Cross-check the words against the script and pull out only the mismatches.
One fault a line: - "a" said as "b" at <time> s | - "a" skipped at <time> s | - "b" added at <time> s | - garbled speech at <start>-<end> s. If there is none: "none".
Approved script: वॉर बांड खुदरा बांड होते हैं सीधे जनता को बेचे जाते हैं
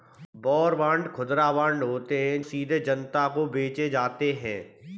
none